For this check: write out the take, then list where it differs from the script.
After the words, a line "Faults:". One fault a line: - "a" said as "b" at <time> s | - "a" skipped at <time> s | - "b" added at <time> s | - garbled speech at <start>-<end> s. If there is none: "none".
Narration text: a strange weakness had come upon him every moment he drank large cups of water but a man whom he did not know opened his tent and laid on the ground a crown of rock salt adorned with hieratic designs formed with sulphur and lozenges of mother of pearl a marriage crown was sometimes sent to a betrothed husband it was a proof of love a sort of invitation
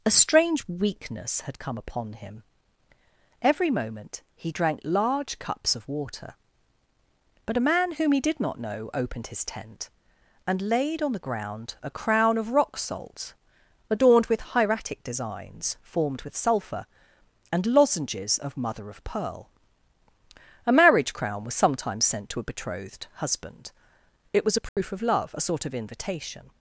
a strange weakness had come upon him every moment he drank large cups of water but a man whom he did not know opened his tent and laid on the ground a crown of rock salt adorned with hieratic designs formed with sulphur and lozenges of mother of pearl a marriage crown was sometimes sent to a betrothed husband it was a proof of love a sort of invitation
Faults:
none